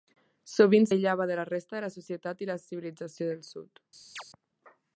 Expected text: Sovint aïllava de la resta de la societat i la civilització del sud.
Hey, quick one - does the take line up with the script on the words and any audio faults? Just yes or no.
no